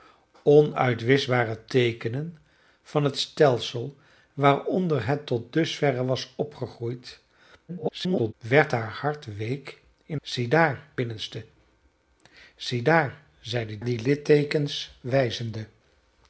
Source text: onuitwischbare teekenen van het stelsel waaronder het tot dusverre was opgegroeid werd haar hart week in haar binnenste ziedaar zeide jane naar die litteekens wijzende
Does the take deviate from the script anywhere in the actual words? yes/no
yes